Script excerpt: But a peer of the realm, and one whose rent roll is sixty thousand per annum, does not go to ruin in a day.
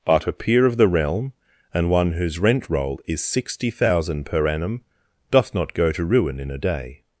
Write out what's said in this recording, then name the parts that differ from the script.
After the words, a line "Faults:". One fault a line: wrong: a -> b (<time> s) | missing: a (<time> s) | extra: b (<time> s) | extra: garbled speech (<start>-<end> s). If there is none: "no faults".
But a peer of the realm, and one whose rent roll is sixty thousand per annum, doth not go to ruin in a day.
Faults:
wrong: does -> doth (5.3 s)